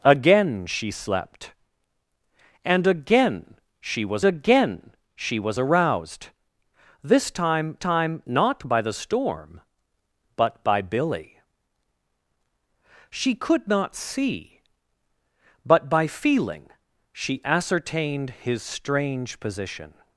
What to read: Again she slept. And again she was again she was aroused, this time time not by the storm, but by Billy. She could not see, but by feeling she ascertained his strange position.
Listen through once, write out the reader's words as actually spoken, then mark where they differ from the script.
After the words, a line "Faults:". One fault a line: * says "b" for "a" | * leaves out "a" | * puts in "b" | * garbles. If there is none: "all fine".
Again she slept. And again she was again she was aroused, this time time not by the storm, but by Billy. She could not see, but by feeling she ascertained his strange position.
Faults:
all fine